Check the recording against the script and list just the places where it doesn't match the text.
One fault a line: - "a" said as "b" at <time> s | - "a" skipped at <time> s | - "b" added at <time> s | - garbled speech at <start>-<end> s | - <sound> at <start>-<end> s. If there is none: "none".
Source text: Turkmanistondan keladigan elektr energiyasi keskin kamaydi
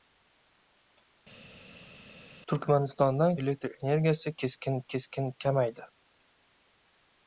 - "keladigan" skipped at 3.3 s
- "keskin" added at 5.0 s